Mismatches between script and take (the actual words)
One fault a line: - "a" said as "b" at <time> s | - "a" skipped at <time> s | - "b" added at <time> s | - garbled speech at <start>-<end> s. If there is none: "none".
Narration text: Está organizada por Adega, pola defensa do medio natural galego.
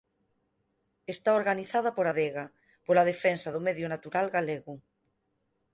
none